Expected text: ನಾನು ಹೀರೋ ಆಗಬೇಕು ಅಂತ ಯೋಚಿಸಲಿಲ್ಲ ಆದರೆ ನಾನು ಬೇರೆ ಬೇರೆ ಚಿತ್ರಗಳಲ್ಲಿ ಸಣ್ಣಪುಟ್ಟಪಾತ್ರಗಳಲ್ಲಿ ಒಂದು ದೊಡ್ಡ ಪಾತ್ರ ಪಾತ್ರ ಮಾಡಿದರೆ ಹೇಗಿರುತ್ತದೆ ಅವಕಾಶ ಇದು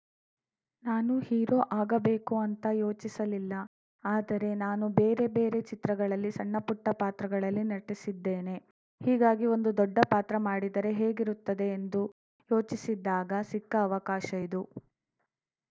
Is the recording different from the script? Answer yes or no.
yes